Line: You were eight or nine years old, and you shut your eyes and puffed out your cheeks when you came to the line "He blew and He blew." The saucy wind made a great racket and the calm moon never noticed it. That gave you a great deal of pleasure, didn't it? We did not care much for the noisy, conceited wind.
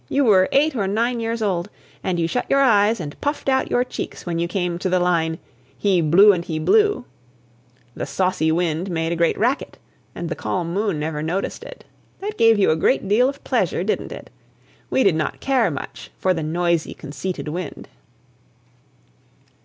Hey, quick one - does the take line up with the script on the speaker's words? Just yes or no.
yes